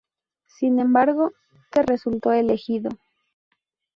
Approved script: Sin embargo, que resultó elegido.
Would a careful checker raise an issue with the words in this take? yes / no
no